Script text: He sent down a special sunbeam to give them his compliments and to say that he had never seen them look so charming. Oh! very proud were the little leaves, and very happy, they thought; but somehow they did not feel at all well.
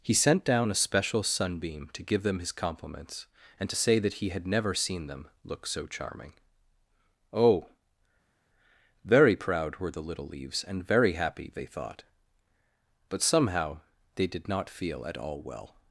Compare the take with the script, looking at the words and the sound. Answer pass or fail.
pass